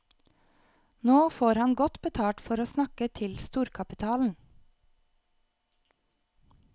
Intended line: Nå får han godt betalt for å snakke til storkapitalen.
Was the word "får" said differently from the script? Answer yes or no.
no